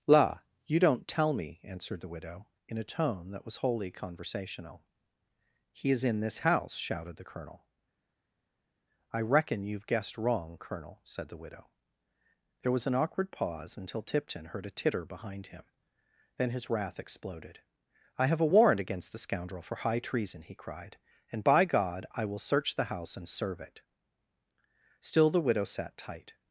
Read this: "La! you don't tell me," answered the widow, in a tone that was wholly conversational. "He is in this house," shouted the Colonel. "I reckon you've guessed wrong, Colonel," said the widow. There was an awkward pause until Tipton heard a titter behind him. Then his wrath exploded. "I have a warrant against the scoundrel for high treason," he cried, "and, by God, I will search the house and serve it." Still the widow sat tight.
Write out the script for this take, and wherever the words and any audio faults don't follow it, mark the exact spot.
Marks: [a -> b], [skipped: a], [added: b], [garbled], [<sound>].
"La! you don't tell me," answered the widow, in a tone that was wholly conversational. "He is in this house," shouted the Colonel. "I reckon you've guessed wrong, Colonel," said the widow. There was an awkward pause until Tipton heard a titter behind him. Then his wrath exploded. "I have a warrant against the scoundrel for high treason," he cried, "and, by God, I will search the house and serve it." Still the widow sat tight.